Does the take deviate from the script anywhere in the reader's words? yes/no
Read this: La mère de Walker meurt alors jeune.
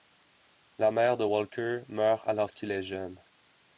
yes